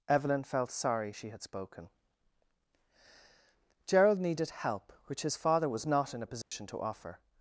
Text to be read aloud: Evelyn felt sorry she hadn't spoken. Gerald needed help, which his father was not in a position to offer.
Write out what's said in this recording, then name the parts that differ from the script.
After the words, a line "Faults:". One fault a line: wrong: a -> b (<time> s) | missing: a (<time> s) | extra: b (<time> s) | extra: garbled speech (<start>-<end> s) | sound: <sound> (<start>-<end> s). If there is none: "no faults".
Evelyn felt sorry she had spoken. Gerald needed help, which his father was not in a position to offer.
Faults:
wrong: hadn't -> had (1.3 s)
sound: dropout (6.4-6.5 s)